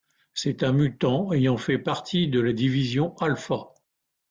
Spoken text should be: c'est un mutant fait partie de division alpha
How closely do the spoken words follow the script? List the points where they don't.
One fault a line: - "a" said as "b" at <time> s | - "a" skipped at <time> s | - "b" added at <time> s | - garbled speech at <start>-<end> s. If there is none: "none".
- "ayant" added at 1.3 s
- "la" added at 2.4 s